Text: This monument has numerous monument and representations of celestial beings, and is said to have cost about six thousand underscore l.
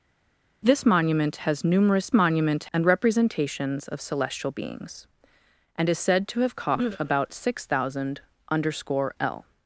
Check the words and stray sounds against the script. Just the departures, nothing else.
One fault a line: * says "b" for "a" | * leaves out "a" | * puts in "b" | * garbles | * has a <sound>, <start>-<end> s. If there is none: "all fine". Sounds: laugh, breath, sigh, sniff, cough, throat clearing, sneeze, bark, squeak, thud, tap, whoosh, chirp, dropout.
all fine